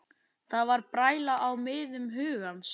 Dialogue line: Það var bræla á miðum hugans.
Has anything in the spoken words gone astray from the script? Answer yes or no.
no